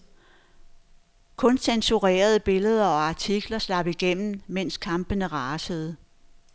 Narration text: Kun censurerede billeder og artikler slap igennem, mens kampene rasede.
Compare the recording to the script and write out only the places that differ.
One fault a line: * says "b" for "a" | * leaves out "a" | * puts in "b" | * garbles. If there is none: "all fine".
all fine